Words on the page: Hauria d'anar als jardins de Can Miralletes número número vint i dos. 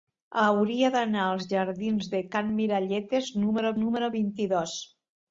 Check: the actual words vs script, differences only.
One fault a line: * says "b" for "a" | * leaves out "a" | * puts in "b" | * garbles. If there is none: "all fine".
all fine